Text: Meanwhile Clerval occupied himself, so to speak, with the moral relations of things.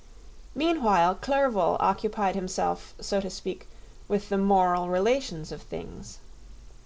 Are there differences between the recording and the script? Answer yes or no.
no